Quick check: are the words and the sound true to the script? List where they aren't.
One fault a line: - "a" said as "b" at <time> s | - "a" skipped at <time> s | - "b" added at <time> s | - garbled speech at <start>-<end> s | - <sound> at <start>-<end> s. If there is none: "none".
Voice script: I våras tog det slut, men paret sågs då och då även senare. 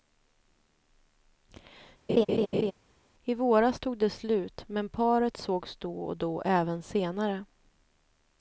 - laugh at 2.1-2.7 s